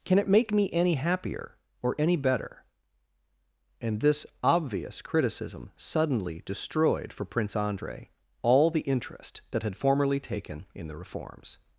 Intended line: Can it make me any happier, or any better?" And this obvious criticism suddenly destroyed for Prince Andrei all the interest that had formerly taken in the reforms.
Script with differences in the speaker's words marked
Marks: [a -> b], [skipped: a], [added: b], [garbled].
Can it make me any happier, or any better?" And this obvious criticism suddenly destroyed for Prince Andrei all the interest that had formerly taken in the reforms.